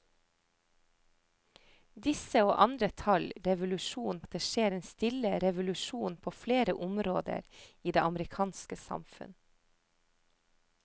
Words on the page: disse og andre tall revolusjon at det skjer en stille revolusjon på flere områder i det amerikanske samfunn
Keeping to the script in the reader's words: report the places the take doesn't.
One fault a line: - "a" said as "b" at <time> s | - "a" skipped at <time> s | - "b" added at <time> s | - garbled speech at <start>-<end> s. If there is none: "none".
none